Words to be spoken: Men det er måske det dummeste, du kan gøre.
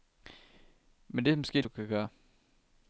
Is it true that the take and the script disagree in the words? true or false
true